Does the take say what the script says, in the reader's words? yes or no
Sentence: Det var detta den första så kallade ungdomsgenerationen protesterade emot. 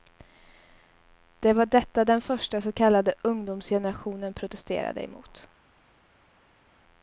yes